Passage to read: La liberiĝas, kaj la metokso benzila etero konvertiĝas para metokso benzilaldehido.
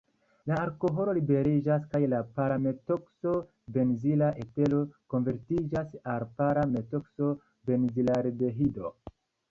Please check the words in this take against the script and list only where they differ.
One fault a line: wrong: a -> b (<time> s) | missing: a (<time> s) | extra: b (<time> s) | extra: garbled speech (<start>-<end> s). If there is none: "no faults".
extra: alkoholo (0.6 s)
extra: para (2.4 s)
extra: al (6.2 s)